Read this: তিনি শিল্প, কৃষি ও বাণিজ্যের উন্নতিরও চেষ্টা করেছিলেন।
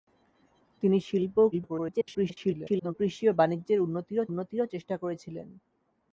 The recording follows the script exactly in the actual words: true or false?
false